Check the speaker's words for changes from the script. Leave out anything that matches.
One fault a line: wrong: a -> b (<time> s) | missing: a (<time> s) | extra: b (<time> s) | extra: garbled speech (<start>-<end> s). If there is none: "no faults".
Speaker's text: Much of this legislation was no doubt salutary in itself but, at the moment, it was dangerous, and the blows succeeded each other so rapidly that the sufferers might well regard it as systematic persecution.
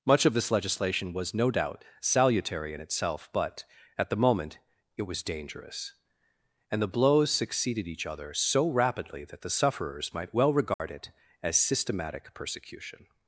no faults